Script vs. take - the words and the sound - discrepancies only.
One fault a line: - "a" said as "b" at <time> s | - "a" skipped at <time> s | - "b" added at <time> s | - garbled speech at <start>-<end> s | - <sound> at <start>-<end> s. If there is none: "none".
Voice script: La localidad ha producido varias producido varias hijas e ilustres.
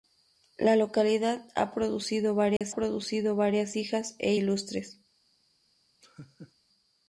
- dropout at 2.6-2.6 s
- laugh at 6.0-6.5 s